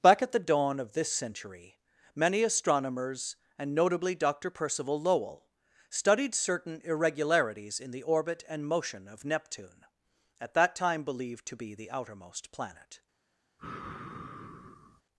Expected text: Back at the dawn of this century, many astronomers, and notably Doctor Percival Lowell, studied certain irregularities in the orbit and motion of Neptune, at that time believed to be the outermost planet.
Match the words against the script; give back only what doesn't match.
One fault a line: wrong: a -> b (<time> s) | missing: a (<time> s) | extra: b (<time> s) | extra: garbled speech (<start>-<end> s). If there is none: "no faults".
no faults